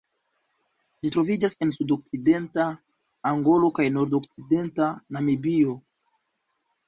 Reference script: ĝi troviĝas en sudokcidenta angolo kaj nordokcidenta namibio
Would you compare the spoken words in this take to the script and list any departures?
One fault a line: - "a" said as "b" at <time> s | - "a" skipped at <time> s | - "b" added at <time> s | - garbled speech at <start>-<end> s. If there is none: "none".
none